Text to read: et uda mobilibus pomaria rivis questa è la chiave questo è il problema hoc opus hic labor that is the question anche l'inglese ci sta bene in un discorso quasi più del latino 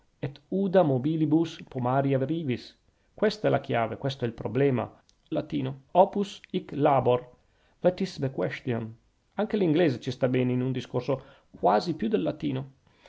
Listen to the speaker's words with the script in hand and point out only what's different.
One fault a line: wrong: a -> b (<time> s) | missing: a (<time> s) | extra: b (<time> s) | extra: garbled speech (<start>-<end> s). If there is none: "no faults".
wrong: hoc -> latino (5.3 s)